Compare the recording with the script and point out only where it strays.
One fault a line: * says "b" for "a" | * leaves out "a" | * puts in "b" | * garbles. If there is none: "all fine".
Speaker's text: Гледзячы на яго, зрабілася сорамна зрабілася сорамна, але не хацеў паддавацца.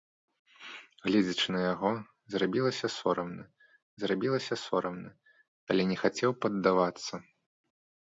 all fine